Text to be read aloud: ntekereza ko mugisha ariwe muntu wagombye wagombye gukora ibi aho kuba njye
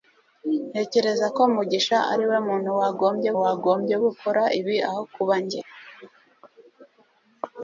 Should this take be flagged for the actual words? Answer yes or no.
no